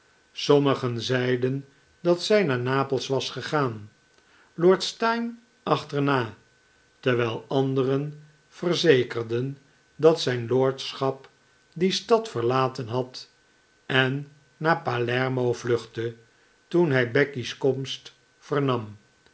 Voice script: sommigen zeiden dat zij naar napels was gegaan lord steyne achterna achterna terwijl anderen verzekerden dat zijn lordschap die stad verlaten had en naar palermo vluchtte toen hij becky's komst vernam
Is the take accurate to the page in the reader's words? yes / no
no